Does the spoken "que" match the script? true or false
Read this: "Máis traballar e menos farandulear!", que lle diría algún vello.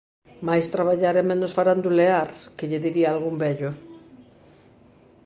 true